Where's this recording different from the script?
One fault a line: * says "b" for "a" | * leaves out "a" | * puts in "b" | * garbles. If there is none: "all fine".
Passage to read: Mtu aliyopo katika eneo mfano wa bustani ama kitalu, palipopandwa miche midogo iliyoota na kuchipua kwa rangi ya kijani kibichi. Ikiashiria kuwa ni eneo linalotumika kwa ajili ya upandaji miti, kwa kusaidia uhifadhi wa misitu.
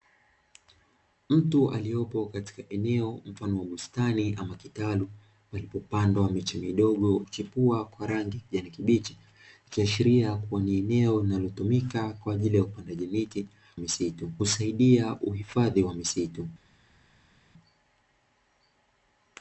* leaves out "iliyoota na"
* says "misitu" for "kwa"